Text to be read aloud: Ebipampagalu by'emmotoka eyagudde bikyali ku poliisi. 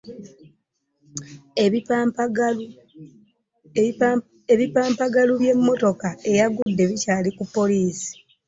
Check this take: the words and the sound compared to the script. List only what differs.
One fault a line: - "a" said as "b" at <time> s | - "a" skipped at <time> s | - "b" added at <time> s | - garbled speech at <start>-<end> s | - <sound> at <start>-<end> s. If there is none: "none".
- dropout at 6.6-6.7 s